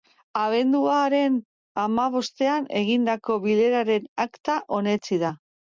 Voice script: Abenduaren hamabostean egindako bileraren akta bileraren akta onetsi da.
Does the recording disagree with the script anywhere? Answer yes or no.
yes